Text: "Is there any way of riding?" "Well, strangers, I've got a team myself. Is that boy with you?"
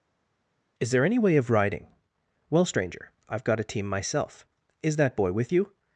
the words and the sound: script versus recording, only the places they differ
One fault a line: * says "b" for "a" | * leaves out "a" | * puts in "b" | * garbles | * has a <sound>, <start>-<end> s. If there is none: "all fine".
* says "stranger" for "strangers"